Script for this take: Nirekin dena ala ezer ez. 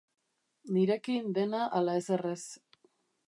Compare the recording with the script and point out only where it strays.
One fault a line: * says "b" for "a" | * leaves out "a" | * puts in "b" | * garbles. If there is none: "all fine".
all fine